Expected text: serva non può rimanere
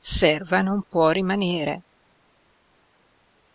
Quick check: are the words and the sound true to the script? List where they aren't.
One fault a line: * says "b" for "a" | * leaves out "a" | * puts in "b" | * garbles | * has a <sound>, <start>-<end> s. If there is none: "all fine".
all fine